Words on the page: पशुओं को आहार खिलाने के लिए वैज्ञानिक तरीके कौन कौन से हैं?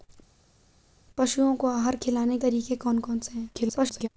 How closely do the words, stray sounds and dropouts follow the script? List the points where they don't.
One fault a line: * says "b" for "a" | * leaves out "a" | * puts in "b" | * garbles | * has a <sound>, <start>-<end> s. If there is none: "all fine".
* leaves out "के लिए वैज्ञानिक"
* garbles